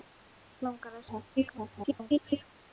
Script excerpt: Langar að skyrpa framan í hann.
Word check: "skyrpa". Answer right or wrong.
wrong